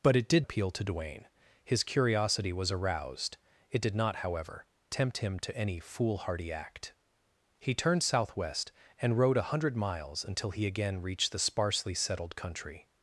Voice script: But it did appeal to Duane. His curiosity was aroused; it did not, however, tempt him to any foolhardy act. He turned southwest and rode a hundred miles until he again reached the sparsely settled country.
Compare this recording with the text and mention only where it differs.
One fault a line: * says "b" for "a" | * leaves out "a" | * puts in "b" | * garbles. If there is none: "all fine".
all fine